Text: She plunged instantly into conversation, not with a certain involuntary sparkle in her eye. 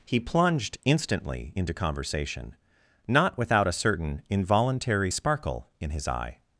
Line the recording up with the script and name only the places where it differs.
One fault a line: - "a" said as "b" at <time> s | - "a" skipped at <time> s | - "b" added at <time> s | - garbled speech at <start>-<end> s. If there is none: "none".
- "She" said as "He" at 0.1 s
- "with" said as "without" at 3.4 s
- "her" said as "his" at 5.9 s